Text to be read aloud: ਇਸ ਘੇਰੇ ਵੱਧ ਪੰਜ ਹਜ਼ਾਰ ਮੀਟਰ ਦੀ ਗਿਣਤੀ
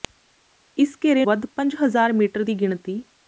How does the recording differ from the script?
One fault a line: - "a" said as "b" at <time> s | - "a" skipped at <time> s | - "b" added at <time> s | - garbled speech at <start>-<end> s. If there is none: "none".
none